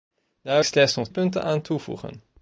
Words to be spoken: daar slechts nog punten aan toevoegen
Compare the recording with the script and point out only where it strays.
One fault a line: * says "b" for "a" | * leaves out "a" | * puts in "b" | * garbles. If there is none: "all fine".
all fine